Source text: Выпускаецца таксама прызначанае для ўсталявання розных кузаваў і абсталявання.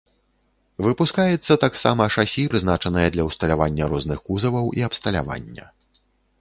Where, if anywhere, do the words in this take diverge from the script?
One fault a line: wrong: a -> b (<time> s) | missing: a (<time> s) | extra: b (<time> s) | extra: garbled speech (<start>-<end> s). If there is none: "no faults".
extra: шасі (2.1 s)